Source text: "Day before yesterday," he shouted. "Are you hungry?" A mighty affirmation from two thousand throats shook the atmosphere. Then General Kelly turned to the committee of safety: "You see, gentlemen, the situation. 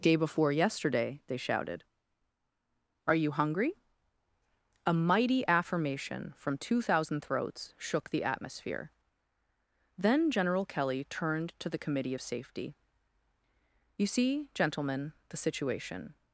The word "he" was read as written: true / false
false